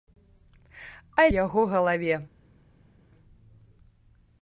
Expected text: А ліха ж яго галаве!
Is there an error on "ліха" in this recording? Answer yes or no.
yes